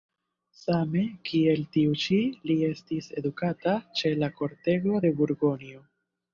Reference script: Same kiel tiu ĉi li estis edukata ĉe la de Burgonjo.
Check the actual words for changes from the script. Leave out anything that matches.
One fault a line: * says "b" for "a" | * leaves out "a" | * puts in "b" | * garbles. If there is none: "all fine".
* puts in "kortego"